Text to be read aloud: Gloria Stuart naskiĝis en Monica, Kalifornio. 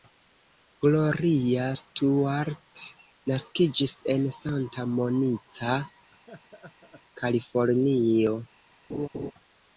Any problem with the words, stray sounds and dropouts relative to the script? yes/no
yes